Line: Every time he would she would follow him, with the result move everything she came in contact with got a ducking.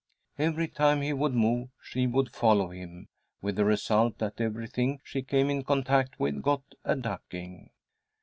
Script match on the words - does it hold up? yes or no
no